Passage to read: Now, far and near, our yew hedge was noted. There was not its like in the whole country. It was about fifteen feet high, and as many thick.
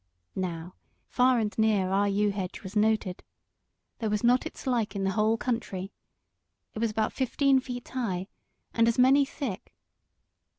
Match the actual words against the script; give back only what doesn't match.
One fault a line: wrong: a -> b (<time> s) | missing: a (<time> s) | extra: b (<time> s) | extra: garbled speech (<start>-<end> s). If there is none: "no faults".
no faults